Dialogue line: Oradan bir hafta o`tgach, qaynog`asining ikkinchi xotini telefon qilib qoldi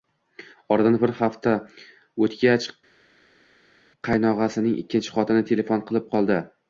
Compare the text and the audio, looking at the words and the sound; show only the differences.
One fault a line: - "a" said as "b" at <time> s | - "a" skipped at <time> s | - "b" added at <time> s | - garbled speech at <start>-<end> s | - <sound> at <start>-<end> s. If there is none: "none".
none